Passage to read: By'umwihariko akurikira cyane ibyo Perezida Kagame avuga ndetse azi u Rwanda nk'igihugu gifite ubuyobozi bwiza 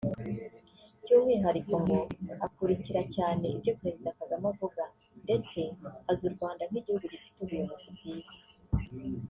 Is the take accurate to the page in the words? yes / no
no